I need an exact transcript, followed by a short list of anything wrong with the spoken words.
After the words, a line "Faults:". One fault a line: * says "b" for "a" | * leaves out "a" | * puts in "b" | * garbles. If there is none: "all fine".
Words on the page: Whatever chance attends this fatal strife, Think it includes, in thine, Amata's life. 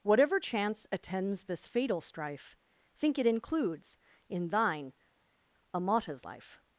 Whatever chance attends this fatal strife, Think it includes, in thine, Amata's life.
Faults:
all fine